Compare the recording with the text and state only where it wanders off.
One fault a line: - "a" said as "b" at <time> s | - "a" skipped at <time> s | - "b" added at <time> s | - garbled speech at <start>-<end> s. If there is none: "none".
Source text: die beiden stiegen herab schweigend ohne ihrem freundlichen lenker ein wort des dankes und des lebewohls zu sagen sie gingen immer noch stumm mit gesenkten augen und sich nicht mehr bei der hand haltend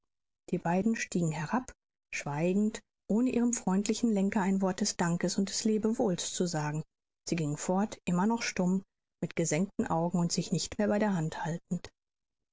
- "fort" added at 7.6 s